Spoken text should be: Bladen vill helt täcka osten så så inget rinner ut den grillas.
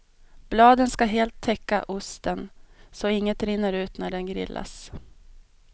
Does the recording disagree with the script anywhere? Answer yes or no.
yes